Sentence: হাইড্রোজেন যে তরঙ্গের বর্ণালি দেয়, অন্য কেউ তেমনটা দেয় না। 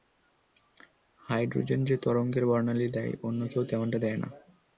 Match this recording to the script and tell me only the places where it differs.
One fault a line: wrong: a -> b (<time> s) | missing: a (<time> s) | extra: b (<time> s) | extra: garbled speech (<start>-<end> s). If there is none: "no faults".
no faults